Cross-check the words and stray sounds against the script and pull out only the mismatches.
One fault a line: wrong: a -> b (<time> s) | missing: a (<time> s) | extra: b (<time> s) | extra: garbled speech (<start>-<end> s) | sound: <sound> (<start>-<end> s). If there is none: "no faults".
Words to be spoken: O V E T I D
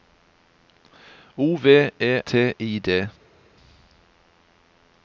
no faults